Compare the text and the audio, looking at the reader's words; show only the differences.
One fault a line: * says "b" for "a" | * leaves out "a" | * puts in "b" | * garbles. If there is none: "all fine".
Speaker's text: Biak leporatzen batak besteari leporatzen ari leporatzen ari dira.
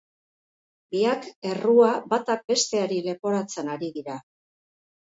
* says "errua" for "leporatzen"
* leaves out "leporatzen ari"